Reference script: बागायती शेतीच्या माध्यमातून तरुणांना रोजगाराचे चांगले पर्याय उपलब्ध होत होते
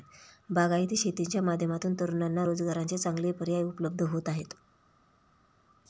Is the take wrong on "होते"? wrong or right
wrong